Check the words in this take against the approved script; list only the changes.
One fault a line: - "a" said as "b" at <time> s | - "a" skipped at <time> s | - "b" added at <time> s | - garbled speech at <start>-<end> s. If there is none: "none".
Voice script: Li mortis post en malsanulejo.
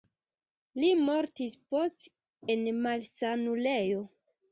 none